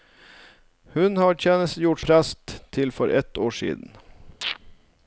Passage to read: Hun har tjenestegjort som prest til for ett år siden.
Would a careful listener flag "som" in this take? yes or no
yes